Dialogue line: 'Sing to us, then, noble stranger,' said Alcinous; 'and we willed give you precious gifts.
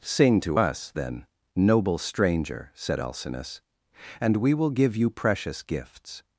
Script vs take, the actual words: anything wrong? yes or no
yes